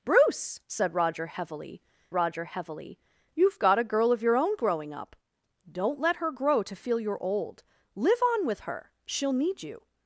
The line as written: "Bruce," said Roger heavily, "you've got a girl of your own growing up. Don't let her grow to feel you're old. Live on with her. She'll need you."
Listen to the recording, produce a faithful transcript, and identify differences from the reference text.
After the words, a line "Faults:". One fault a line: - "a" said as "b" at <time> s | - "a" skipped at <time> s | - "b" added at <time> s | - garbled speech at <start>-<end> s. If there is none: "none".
"Bruce," said Roger heavily Roger heavily, "you've got a girl of your own growing up. Don't let her grow to feel you're old. Live on with her. She'll need you."
Faults:
- "Roger heavily" added at 2.1 s